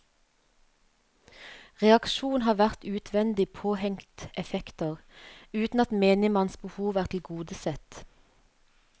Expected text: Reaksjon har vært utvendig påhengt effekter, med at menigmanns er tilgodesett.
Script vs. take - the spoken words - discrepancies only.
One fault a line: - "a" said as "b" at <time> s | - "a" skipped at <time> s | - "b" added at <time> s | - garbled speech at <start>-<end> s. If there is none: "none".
- "med" said as "uten" at 5.5 s
- "behov" added at 6.7 s